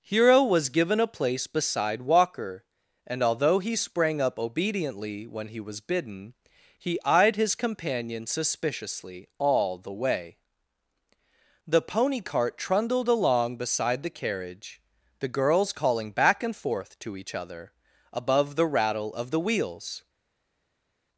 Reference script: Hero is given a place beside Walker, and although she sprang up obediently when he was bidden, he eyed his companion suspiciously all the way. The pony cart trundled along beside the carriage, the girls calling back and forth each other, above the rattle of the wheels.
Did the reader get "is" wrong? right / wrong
wrong